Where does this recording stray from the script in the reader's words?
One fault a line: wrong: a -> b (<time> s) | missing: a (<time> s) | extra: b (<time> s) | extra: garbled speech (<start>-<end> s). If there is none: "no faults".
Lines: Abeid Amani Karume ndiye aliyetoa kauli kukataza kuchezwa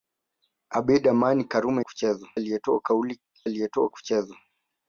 wrong: ndiye -> kuchezwa (1.8 s)
wrong: kukataza -> aliyetoa (3.4 s)